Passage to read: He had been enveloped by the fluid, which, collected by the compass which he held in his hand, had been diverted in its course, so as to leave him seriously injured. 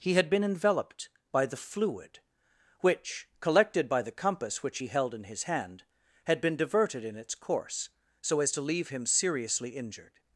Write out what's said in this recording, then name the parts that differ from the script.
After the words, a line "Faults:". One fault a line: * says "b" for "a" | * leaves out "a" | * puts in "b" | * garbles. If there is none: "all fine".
He had been enveloped by the fluid, which, collected by the compass which he held in his hand, had been diverted in its course, so as to leave him seriously injured.
Faults:
all fine